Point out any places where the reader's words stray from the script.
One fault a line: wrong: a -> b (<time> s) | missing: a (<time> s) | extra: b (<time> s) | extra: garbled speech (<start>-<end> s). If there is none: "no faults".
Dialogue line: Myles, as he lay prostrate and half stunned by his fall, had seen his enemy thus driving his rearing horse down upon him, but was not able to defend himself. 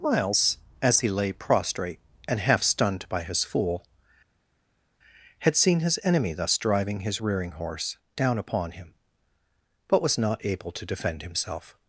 wrong: fall -> fool (3.4 s)